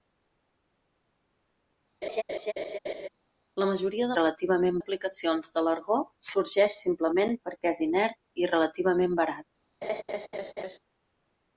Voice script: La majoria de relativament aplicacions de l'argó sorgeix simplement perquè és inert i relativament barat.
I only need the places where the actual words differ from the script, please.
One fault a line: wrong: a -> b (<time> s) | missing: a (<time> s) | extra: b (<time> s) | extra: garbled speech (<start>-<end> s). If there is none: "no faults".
no faults